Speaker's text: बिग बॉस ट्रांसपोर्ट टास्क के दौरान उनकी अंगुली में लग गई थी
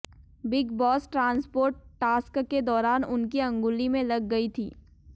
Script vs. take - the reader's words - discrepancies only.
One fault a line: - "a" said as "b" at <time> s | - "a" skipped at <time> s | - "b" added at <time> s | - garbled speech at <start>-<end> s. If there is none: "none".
none